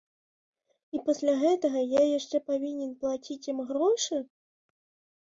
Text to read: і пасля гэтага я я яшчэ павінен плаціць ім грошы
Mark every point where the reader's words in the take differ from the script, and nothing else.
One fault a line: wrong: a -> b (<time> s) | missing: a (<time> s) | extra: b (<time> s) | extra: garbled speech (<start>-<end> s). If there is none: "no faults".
missing: я (2.0 s)